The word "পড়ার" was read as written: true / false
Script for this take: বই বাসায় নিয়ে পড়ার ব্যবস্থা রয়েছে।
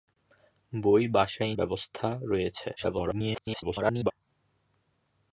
false